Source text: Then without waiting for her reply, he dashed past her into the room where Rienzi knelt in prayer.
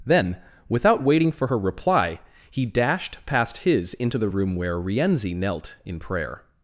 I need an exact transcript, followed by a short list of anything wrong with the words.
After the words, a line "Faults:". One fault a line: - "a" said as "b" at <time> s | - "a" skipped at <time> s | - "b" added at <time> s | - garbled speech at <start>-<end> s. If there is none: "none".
Then without waiting for her reply, he dashed past his into the room where Rienzi knelt in prayer.
Faults:
- "her" said as "his" at 3.6 s